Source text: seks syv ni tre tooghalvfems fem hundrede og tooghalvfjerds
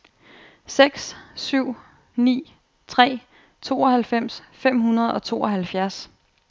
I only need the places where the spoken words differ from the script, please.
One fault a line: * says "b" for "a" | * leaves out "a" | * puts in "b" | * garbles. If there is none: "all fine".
all fine